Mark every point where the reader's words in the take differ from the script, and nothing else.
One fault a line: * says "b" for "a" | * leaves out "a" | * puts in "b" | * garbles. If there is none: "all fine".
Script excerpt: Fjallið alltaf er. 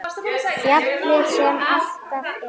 * puts in "sem"